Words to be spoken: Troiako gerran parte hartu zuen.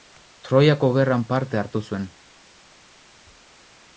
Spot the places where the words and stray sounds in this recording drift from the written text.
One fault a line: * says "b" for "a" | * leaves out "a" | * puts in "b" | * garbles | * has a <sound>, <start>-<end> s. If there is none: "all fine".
all fine